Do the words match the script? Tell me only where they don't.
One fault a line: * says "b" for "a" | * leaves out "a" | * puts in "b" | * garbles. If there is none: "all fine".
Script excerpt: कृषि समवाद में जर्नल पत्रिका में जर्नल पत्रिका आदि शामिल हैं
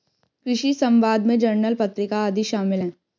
* leaves out "में जर्नल पत्रिका"